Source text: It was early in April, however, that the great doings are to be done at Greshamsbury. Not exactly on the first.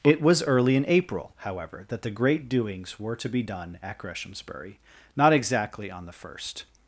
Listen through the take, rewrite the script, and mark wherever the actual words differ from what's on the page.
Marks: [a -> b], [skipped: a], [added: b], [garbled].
It was early in April, however, that the great doings [are -> were] to be done at Greshamsbury. Not exactly on the first.